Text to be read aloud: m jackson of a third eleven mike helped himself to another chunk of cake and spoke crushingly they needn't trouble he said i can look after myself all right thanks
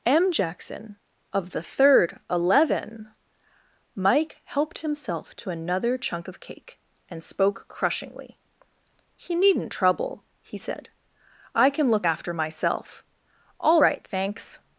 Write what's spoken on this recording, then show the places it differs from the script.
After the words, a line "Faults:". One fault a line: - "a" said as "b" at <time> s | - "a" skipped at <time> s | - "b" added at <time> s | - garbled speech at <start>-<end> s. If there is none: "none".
m jackson of the third eleven mike helped himself to another chunk of cake and spoke crushingly he needn't trouble he said i can look after myself all right thanks
Faults:
- "a" said as "the" at 1.5 s
- "they" said as "he" at 9.2 s